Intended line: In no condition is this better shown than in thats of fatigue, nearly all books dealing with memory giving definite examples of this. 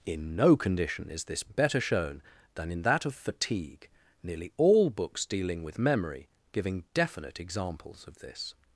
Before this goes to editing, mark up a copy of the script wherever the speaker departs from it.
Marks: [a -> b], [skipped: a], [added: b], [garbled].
In no condition is this better shown than in [thats -> that] of fatigue, nearly all books dealing with memory giving definite examples of this.